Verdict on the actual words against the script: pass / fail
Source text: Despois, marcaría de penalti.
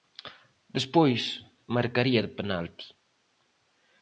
pass